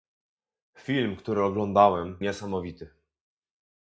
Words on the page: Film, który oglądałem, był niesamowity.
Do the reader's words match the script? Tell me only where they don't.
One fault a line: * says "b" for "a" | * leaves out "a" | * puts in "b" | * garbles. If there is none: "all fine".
* leaves out "był"